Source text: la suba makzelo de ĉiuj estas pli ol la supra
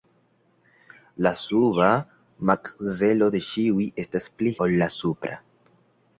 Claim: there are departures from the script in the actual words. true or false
false